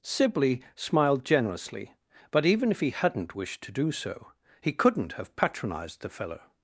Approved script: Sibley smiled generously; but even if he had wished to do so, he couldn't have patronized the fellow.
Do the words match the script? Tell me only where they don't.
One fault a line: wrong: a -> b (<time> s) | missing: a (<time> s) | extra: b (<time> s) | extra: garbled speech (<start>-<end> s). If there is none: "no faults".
wrong: had -> hadn't (2.9 s)